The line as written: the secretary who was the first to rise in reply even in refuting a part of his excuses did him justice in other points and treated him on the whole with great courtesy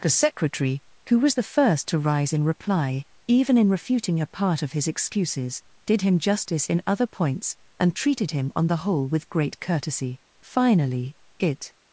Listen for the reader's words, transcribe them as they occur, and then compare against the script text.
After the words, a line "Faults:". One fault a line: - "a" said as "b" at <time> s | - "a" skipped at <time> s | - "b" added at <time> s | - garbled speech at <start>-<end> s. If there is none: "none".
the secretary who was the first to rise in reply even in refuting a part of his excuses did him justice in other points and treated him on the whole with great courtesy finally it
Faults:
- "finally it" added at 10.4 s